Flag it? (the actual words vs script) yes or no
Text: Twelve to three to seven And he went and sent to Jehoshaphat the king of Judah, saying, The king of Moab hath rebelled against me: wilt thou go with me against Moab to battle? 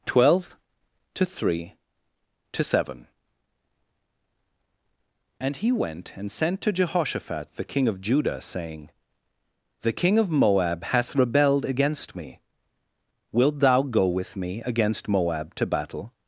no